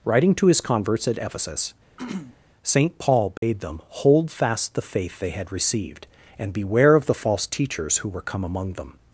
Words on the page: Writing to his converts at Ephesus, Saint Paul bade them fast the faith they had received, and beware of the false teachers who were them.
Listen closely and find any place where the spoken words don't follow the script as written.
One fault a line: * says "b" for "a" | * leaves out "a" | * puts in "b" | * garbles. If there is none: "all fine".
* puts in "hold"
* puts in "come among"